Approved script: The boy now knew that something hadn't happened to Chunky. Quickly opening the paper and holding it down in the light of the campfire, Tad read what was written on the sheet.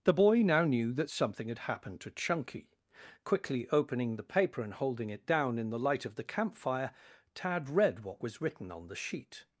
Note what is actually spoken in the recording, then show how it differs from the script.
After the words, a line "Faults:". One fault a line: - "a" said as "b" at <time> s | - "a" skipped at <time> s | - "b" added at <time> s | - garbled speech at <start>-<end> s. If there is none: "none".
The boy now knew that something had happened to Chunky. Quickly opening the paper and holding it down in the light of the campfire, Tad read what was written on the sheet.
Faults:
- "hadn't" said as "had" at 1.5 s